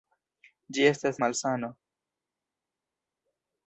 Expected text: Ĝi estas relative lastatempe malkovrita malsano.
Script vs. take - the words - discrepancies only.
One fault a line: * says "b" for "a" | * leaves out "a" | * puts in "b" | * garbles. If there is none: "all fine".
* leaves out "relative lastatempe malkovrita"